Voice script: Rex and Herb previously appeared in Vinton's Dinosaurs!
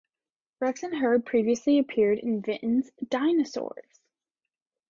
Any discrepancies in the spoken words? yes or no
no